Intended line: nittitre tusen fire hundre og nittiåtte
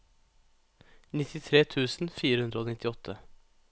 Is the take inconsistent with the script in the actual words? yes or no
no